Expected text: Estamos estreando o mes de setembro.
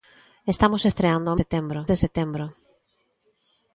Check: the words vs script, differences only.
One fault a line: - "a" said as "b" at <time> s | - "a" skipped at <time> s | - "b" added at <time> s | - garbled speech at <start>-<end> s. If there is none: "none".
- "mes" said as "setembro" at 1.4 s